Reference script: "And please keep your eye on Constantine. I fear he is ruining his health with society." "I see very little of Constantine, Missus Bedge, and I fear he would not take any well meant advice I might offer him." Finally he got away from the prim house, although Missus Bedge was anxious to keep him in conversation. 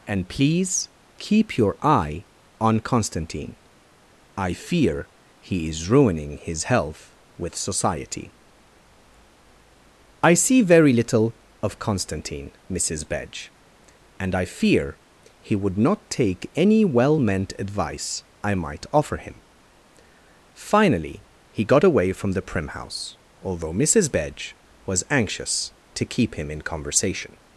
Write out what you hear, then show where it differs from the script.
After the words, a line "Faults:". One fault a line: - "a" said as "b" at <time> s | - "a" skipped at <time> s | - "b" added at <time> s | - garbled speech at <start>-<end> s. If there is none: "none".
"And please keep your eye on Constantine. I fear he is ruining his health with society." "I see very little of Constantine, Missus Bedge, and I fear he would not take any well meant advice I might offer him." Finally he got away from the prim house, although Missus Bedge was anxious to keep him in conversation.
Faults:
none